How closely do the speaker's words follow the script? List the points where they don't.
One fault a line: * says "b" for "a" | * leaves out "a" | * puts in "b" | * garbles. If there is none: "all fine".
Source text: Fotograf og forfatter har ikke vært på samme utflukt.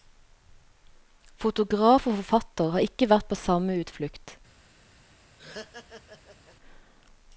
all fine